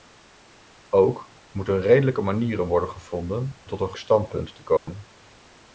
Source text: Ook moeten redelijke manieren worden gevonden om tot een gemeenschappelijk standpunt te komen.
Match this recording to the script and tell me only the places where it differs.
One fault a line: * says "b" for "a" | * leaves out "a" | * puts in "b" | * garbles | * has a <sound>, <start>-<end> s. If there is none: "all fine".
* leaves out "om"
* leaves out "gemeenschappelijk"
* has a dropout, 4.8-4.9 s